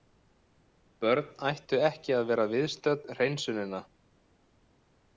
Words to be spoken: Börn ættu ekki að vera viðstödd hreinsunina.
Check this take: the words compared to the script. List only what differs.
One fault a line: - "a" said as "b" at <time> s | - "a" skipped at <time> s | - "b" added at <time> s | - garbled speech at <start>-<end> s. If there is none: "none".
none